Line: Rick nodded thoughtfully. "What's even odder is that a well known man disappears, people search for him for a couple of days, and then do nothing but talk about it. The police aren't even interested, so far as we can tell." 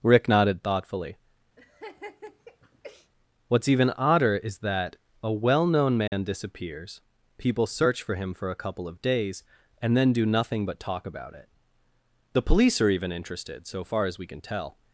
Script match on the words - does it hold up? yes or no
no